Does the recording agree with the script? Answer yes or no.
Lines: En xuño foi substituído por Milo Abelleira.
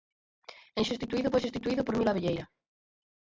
no